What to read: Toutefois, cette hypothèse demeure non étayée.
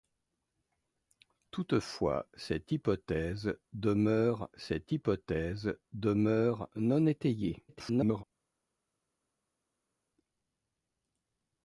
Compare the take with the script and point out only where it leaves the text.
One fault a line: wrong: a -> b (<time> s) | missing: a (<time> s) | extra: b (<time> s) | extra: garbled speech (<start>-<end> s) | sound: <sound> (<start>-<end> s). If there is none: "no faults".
extra: cette hypothèse demeure (4.5 s)
extra: garbled speech (7.7-8.2 s)